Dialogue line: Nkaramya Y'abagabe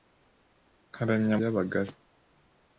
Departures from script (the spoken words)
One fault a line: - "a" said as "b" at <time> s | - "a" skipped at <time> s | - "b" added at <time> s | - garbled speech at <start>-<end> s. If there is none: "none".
none